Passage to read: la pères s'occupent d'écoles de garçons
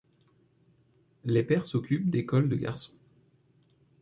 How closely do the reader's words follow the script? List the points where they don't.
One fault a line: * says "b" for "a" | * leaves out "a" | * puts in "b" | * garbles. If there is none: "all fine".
* says "les" for "la"